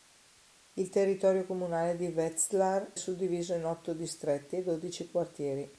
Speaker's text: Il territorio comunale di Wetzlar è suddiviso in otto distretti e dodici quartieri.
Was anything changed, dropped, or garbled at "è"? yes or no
yes